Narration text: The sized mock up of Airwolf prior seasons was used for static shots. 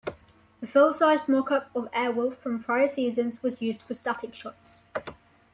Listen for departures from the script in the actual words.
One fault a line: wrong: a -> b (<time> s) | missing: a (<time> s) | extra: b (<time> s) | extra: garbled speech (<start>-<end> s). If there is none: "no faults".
extra: full (0.7 s)
extra: from (2.4 s)